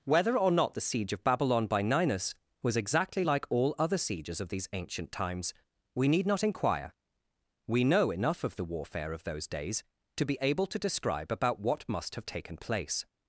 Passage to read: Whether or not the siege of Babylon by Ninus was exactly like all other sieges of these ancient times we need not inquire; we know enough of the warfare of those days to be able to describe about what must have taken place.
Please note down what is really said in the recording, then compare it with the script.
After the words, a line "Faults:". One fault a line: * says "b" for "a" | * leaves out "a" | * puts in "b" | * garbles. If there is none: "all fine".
Whether or not the siege of Babylon by Ninus was exactly like all other sieges of these ancient times we need not inquire; we know enough of the warfare of those days to be able to describe about what must have taken place.
Faults:
all fine